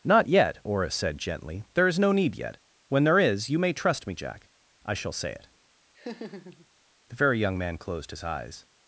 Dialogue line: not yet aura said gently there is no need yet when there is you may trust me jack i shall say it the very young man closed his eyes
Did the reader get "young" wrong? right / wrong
right